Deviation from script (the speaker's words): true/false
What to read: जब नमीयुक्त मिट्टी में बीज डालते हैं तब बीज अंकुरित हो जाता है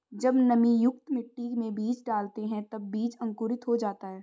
false